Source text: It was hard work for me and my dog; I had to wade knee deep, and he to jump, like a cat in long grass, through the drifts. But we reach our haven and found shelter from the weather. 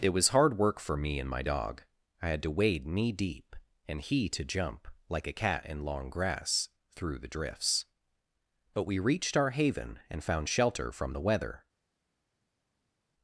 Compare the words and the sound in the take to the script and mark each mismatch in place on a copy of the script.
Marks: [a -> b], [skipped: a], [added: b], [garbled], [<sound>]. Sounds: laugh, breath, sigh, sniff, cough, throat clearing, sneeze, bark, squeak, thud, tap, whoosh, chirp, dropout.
It was hard work for me and my dog; I had to wade knee deep, and he to jump, like a cat in long grass, through the drifts. But we [reach -> reached] our haven and found shelter from the weather.